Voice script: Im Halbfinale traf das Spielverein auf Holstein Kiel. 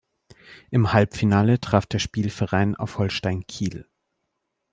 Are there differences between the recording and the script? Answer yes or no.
yes